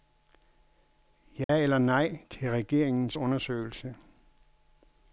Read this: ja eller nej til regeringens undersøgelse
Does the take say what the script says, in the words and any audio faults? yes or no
no